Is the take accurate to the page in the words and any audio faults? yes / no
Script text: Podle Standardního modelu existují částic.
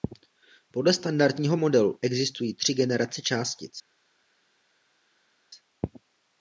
no